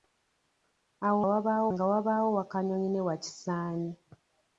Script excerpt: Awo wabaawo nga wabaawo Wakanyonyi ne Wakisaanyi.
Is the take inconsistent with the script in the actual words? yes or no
no